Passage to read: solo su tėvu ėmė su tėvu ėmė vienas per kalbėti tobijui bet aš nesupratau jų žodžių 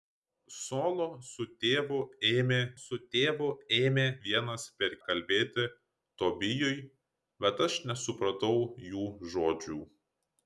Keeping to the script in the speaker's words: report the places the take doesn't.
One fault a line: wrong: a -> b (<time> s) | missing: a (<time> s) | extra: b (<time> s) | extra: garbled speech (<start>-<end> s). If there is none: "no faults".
no faults